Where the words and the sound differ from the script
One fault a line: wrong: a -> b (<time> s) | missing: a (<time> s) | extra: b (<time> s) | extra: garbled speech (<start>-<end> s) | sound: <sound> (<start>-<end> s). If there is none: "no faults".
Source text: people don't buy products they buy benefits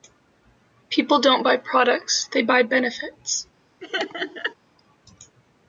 sound: laugh (3.8-4.5 s)